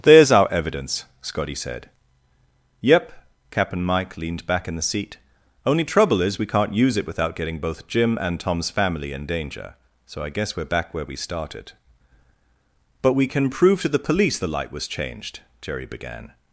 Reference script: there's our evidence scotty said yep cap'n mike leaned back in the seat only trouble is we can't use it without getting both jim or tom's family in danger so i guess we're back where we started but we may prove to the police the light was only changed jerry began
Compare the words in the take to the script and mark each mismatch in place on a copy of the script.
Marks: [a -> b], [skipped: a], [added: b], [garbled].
there's our evidence scotty said yep cap'n mike leaned back in the seat only trouble is we can't use it without getting both jim [or -> and] tom's family in danger so i guess we're back where we started but we [may -> can] prove to the police the light was [skipped: only] changed jerry began